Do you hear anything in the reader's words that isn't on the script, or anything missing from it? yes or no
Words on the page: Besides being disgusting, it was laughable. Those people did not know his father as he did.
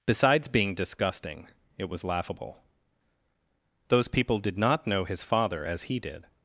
no